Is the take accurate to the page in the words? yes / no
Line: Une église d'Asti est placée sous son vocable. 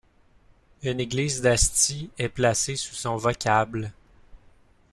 yes